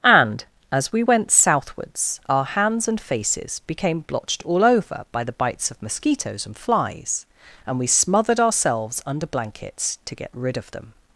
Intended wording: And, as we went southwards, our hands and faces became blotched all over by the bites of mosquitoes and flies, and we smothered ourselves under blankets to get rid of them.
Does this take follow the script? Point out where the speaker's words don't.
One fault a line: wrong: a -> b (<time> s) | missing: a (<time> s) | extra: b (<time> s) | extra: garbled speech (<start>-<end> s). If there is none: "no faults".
no faults